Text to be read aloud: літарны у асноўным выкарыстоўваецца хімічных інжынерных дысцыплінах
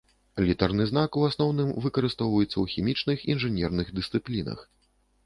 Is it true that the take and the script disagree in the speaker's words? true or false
true